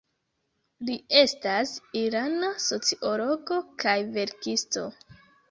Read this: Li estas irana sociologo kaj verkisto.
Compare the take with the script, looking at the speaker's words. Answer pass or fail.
pass